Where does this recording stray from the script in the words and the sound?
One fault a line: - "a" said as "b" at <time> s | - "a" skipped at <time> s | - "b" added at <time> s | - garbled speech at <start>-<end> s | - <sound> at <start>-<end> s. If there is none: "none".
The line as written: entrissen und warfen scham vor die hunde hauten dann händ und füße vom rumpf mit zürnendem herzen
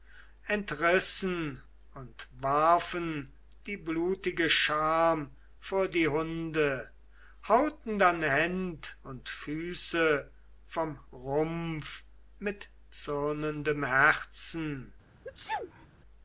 - "die blutige" added at 3.7 s
- sneeze at 15.2-15.9 s